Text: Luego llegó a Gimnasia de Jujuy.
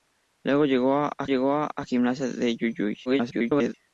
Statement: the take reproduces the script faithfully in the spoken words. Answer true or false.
false